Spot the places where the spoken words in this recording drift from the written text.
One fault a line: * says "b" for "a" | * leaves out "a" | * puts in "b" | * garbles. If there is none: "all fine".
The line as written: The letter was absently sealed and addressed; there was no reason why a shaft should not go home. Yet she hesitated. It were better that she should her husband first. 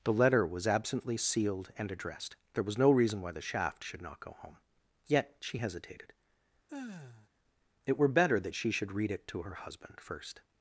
* says "the" for "a"
* puts in "read it to"